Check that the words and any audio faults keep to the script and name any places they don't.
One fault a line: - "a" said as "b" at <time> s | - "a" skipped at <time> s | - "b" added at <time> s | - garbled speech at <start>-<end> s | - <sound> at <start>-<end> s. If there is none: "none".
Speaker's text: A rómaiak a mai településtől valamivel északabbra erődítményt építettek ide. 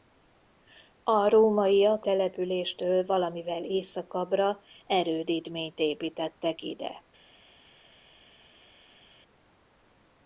- "a mai" skipped at 2.0 s